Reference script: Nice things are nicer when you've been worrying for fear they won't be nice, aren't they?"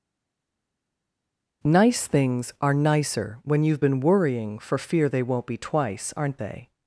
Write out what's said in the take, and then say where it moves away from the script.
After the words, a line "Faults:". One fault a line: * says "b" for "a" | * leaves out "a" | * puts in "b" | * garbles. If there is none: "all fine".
Nice things are nicer when you've been worrying for fear they won't be twice, aren't they?"
Faults:
* says "twice" for "nice"